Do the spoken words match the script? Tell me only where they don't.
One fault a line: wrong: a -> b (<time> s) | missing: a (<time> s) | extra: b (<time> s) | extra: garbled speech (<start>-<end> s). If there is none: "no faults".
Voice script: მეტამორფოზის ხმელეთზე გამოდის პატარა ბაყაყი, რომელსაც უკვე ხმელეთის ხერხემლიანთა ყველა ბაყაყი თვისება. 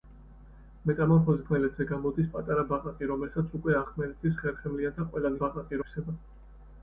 no faults